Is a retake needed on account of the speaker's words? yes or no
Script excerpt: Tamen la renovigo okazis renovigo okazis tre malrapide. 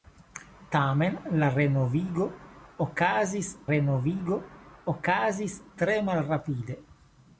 no